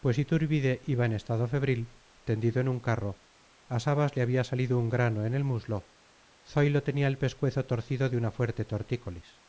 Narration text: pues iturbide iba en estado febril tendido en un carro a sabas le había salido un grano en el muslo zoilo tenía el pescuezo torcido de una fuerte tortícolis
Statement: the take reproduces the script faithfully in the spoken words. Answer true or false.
true